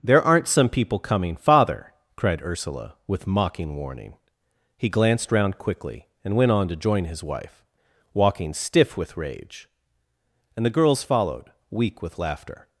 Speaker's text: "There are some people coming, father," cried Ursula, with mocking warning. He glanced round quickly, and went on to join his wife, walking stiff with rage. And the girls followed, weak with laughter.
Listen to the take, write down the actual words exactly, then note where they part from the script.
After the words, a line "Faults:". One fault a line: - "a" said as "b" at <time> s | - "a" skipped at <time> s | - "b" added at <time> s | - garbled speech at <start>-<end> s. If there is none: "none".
"There aren't some people coming, father," cried Ursula, with mocking warning. He glanced round quickly, and went on to join his wife, walking stiff with rage. And the girls followed, weak with laughter.
Faults:
- "are" said as "aren't" at 0.2 s